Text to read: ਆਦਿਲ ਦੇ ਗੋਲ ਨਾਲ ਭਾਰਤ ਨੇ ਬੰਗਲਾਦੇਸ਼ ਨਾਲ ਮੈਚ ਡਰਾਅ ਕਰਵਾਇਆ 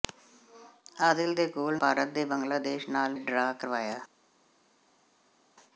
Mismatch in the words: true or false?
true